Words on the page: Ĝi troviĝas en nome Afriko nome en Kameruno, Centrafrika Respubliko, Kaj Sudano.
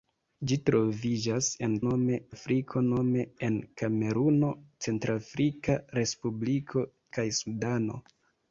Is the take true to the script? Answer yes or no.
yes